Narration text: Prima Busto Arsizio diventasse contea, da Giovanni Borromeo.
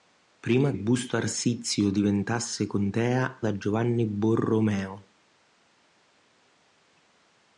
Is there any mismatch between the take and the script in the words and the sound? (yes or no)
no